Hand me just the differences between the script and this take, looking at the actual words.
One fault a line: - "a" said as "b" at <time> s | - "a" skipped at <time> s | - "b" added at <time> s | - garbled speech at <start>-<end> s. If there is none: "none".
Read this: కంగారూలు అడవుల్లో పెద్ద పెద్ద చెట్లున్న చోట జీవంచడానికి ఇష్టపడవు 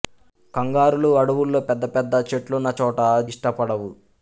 - "జీవంచడానికి" skipped at 3.0 s